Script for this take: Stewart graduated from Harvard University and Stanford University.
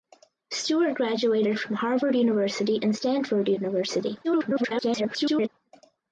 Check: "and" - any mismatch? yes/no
no